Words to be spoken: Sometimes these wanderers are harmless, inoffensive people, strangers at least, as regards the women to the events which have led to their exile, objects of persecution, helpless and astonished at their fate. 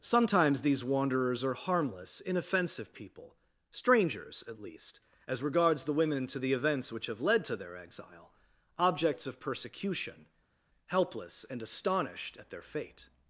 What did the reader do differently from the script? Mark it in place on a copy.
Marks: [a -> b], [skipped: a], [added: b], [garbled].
Sometimes these wanderers are harmless, inoffensive people, strangers at least, as regards the women to the events which have led to their exile, objects of persecution, helpless and astonished at their fate.